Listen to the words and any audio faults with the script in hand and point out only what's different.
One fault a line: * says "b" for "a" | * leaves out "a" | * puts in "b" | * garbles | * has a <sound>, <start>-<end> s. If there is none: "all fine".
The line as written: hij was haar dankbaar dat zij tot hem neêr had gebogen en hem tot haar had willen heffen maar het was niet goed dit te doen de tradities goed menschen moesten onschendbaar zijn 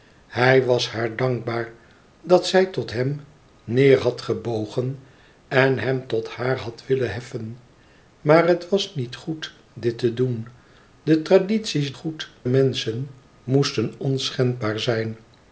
all fine